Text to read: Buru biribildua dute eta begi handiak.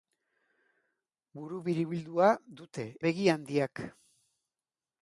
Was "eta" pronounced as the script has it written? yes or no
no